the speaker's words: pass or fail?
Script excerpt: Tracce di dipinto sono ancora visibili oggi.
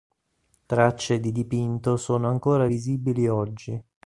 pass